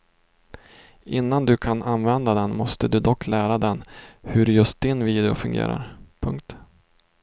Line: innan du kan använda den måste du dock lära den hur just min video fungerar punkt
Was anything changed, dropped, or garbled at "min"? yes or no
yes